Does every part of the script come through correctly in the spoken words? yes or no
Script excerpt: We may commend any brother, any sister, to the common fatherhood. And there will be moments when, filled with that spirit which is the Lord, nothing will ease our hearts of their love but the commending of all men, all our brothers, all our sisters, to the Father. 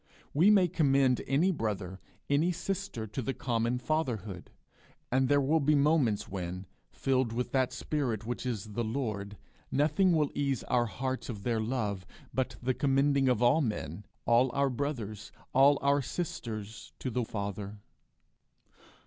yes